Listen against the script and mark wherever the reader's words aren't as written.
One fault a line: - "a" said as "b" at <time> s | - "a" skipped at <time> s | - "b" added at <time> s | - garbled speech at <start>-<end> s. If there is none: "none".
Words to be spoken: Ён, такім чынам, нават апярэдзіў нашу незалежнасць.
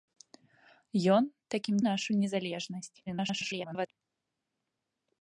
- "чынам нават апярэдзіў" skipped at 1.8 s
- garbled speech at 3.1-3.9 s